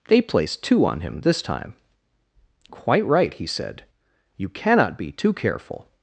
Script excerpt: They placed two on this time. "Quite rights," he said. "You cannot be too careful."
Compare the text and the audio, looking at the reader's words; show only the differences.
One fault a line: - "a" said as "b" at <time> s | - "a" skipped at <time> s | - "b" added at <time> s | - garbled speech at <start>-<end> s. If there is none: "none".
- "him" added at 1.0 s
- "rights" said as "right" at 3.0 s